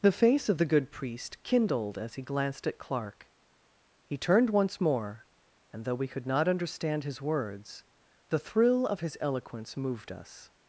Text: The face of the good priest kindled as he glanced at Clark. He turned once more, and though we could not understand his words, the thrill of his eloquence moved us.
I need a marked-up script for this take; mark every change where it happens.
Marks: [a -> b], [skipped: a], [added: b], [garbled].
The face of the good priest kindled as he glanced at Clark. He turned once more, and though we could not understand his words, the thrill of his eloquence moved us.